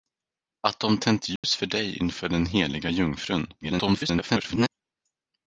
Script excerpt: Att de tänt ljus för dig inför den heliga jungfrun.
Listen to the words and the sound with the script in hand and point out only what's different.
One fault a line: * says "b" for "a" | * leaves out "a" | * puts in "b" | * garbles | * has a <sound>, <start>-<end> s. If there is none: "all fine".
* has a dropout, 1.4-1.4 s
* garbles